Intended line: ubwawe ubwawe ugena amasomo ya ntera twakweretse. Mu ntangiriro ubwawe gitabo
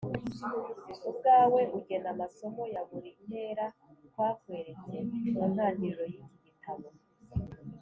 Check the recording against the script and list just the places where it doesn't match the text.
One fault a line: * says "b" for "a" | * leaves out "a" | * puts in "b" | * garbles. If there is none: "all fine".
* leaves out "ubwawe"
* puts in "buri"
* says "y'iki" for "ubwawe"